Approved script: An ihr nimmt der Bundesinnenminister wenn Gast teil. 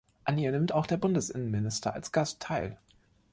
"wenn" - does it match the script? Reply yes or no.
no